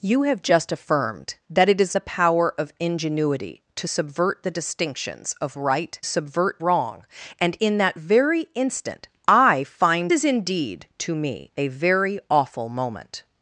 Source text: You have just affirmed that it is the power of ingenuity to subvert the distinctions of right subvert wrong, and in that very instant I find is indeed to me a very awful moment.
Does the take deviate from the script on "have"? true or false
false